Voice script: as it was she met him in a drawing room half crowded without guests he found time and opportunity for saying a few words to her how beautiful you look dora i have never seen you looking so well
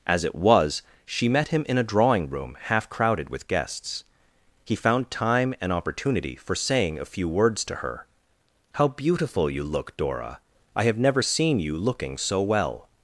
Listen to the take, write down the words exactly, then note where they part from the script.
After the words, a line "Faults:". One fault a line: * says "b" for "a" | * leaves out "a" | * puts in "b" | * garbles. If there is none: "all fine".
as it was she met him in a drawing room half crowded with guests he found time and opportunity for saying a few words to her how beautiful you look dora i have never seen you looking so well
Faults:
* says "with" for "without"